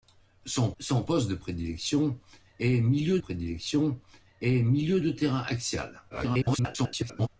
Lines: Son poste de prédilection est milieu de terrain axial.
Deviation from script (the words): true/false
true